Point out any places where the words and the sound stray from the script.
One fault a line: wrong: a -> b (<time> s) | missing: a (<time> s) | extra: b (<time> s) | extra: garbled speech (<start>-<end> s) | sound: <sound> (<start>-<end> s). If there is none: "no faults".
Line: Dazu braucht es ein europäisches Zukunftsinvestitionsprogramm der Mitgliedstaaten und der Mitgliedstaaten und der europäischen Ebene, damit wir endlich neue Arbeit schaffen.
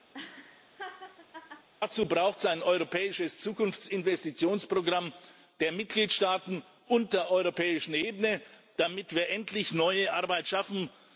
sound: laugh (0.1-1.7 s)
missing: Mitgliedstaaten und der (7.3 s)